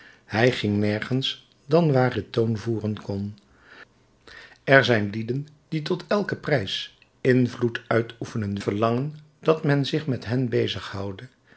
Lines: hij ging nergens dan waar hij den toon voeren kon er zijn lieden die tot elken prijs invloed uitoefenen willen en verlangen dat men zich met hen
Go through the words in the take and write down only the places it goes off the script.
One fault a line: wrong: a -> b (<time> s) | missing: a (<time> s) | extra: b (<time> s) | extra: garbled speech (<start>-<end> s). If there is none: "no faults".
missing: hij (2.2 s)
missing: willen en (8.6 s)